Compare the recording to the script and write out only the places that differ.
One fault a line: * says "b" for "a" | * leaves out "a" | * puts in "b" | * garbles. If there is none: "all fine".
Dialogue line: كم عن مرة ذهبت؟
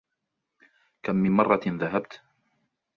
* says "من" for "عن"